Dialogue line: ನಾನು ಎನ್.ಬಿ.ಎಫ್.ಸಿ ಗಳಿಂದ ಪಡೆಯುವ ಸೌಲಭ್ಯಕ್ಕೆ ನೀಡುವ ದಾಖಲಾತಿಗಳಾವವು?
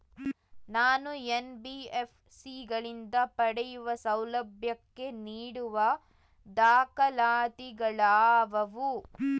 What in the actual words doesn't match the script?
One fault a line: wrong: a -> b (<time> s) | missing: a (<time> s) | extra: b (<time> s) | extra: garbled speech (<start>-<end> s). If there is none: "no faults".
no faults